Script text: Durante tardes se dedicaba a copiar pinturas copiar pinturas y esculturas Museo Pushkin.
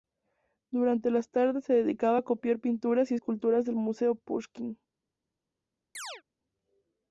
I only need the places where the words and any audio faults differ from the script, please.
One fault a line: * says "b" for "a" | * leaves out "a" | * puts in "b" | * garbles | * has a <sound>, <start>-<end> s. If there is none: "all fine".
* puts in "las"
* leaves out "copiar pinturas"
* puts in "del"
* has a chirp, 5.9-6.2 s